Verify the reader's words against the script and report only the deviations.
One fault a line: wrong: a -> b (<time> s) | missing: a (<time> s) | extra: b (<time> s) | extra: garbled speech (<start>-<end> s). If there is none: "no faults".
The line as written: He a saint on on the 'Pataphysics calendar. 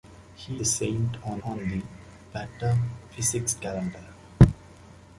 no faults